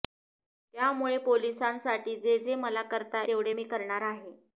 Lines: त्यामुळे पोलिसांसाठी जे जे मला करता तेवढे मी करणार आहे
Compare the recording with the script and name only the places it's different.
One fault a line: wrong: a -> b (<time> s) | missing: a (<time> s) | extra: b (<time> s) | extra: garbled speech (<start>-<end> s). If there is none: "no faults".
no faults